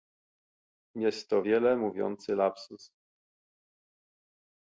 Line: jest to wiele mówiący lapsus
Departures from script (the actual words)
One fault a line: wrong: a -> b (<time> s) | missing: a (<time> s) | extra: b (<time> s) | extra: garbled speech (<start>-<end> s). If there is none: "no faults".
no faults